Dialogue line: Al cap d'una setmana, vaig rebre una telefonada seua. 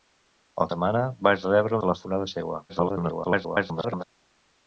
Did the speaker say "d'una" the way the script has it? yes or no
no